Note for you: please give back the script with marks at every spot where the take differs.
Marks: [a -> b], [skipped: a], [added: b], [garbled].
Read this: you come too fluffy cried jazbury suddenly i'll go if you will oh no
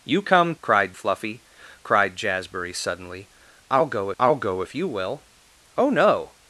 you come [too -> cried] fluffy cried jazbury suddenly i'll go [added: i'll go] if you will oh no